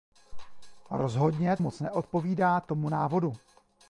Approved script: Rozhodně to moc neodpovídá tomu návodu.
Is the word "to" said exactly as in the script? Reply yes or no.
no